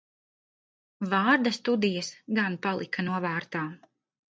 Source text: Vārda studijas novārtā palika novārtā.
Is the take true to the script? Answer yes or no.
no